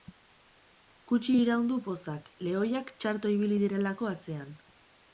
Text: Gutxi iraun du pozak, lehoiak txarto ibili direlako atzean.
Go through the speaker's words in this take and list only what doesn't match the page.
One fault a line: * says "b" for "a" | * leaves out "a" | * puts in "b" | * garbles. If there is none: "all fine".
all fine